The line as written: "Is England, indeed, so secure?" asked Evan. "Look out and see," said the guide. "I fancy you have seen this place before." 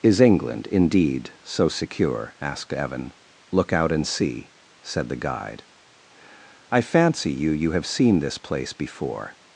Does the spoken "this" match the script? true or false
true